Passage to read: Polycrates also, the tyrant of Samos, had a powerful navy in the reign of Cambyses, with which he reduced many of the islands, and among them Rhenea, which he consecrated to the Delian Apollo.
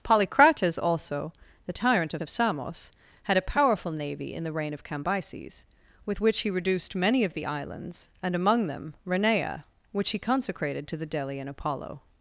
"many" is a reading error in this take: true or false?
false